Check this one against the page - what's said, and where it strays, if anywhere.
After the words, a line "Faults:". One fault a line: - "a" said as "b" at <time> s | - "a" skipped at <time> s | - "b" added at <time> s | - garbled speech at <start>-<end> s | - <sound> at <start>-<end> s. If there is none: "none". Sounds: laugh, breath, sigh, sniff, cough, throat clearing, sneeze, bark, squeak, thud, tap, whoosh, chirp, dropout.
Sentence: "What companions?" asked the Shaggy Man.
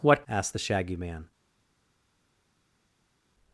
"What?" asked the Shaggy Man.
Faults:
- "companions" skipped at 0.2 s